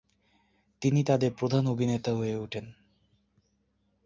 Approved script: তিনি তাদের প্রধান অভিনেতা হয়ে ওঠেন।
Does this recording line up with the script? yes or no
yes